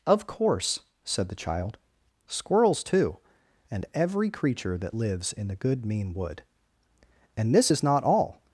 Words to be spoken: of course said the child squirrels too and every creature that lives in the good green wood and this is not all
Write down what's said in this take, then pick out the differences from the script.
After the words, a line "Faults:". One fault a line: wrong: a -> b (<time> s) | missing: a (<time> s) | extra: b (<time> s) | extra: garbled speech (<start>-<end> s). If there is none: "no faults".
of course said the child squirrels too and every creature that lives in the good mean wood and this is not all
Faults:
wrong: green -> mean (5.9 s)